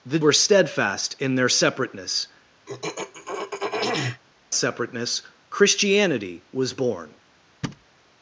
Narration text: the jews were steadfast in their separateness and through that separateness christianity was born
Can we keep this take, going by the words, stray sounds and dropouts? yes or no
no